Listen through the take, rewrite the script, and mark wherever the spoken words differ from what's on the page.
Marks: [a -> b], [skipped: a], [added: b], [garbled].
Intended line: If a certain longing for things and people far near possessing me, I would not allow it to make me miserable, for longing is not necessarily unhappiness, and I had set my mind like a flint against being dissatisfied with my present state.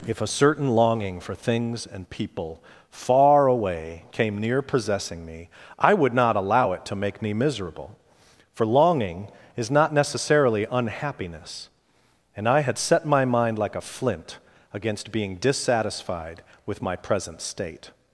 If a certain longing for things and people far [added: away came] near possessing me, I would not allow it to make me miserable, for longing is not necessarily unhappiness, and I had set my mind like a flint against being dissatisfied with my present state.